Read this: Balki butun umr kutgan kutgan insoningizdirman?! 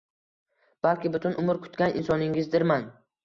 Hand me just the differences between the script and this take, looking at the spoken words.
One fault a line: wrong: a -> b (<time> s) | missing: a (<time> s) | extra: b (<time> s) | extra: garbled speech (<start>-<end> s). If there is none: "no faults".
missing: kutgan (2.0 s)